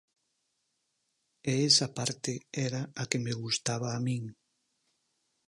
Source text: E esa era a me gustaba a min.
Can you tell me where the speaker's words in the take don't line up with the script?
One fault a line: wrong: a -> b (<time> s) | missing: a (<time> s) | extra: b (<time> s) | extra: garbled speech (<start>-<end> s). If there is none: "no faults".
extra: parte (2.0 s)
extra: que (3.1 s)